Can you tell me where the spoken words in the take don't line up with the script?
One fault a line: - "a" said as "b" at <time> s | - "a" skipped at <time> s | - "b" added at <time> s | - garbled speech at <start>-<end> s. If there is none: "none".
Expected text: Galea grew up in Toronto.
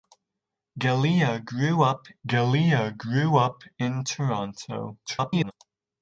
- "galea grew up" added at 2.3 s
- garbled speech at 5.1-5.5 s